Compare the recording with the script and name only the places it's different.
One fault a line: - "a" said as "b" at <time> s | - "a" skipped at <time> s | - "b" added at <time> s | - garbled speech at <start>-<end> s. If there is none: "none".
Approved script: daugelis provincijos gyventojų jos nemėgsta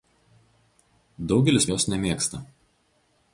- "provincijos gyventojų" skipped at 1.7 s